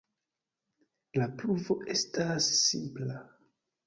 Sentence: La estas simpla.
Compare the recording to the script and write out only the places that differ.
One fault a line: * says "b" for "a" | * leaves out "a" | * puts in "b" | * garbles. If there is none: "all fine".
* puts in "pruvo"